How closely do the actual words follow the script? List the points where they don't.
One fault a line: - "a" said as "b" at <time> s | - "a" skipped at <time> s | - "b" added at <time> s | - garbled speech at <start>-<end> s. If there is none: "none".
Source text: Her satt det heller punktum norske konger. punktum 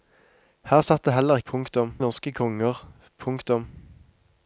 none